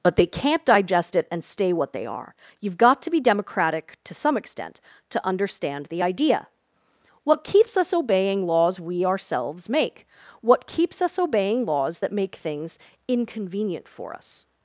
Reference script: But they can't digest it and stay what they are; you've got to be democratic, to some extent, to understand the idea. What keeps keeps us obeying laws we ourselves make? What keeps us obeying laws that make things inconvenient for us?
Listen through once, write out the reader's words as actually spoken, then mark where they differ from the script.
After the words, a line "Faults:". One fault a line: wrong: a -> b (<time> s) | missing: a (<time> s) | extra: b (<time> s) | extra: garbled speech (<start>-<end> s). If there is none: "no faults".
But they can't digest it and stay what they are; you've got to be democratic, to some extent, to understand the idea. What keeps us obeying laws we ourselves make? What keeps us obeying laws that make things inconvenient for us?
Faults:
missing: keeps (7.8 s)